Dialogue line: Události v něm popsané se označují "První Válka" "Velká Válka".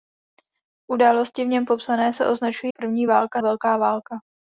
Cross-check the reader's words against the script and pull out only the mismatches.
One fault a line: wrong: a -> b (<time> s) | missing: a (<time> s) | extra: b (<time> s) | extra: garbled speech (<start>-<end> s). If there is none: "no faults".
no faults